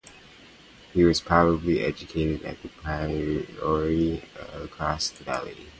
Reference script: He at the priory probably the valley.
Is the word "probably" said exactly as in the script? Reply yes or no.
no